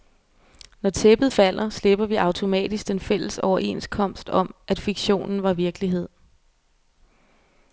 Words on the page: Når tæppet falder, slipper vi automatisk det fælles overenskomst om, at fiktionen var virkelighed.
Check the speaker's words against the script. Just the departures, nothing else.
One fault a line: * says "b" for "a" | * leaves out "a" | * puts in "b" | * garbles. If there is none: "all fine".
* says "den" for "det"